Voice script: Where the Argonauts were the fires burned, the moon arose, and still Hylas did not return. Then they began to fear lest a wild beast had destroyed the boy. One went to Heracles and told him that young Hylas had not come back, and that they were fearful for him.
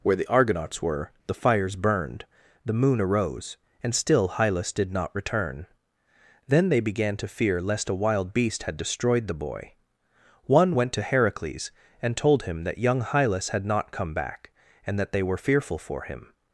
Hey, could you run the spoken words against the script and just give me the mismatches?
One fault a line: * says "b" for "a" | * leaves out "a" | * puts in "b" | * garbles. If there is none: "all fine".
all fine